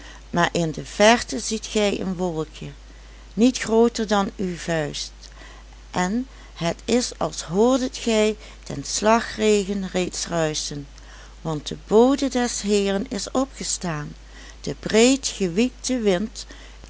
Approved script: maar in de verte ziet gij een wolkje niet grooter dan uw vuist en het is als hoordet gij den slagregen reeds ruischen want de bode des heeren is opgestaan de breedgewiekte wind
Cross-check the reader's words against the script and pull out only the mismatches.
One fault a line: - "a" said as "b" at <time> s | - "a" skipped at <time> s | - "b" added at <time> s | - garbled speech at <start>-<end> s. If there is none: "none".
none